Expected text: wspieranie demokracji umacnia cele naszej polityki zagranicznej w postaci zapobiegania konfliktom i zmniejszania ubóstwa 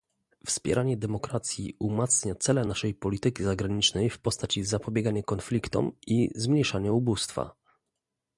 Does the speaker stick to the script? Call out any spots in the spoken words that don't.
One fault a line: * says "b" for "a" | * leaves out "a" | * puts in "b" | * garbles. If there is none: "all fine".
all fine